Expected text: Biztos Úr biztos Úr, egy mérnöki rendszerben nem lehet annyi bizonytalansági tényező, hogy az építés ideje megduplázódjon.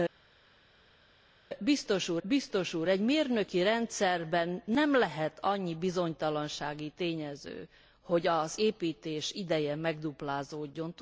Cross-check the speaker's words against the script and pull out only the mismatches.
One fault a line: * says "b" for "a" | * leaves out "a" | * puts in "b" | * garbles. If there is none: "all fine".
all fine